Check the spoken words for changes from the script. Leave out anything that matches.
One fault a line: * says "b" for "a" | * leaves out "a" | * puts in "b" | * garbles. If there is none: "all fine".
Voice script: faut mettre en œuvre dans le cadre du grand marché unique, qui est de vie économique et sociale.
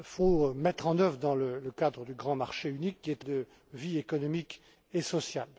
all fine